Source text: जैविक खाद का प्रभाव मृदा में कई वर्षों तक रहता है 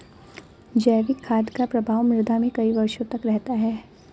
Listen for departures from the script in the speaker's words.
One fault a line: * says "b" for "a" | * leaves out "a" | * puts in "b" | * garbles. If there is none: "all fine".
all fine